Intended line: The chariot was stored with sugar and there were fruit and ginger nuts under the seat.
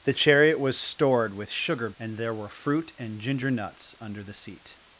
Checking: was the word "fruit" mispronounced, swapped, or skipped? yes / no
no